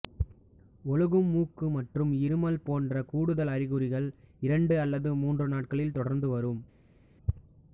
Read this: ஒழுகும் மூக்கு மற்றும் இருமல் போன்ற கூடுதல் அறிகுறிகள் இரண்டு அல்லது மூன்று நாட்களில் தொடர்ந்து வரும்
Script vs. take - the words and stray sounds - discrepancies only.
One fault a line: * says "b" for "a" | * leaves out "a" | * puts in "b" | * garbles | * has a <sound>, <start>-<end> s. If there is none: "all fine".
all fine